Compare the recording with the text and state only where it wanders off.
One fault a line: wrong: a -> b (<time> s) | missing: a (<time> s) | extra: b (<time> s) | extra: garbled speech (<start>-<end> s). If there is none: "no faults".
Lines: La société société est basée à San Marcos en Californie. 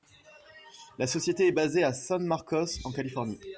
missing: société (1.4 s)